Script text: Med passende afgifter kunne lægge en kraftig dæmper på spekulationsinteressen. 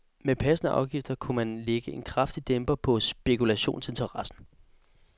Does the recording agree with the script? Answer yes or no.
no